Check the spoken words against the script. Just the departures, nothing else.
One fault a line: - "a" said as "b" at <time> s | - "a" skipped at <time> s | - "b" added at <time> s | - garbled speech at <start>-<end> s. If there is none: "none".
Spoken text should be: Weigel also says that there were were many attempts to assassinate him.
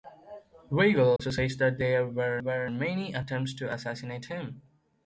none